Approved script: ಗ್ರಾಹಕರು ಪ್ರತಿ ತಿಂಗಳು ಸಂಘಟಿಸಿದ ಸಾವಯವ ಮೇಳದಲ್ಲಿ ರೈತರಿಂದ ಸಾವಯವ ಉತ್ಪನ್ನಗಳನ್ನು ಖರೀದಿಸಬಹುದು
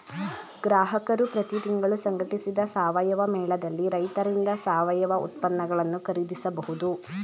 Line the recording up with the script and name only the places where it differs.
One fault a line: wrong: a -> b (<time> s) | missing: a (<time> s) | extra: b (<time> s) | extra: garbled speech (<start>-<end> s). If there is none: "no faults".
no faults